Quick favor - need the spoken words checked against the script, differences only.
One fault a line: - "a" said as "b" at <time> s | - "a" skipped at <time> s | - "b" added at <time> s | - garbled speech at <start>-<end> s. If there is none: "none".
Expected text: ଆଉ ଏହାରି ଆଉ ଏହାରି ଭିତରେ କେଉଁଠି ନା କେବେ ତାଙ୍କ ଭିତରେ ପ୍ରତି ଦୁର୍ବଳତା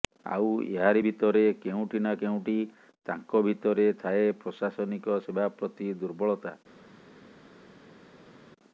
- "ଆଉ ଏହାରି" skipped at 1.0 s
- "କେବେ" said as "କେଉଁଠି" at 2.2 s
- "ଥାଏ ପ୍ରଶାସନିକ ସେବା" added at 4.0 s